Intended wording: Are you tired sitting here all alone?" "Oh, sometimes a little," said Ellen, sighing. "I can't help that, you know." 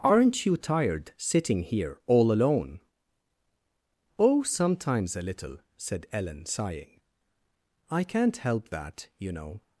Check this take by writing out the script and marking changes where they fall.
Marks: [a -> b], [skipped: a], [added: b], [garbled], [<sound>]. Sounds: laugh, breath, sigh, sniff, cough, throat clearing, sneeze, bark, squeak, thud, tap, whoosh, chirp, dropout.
[Are -> Aren't] you tired sitting here all alone?" "Oh, sometimes a little," said Ellen, sighing. "I can't help that, you know."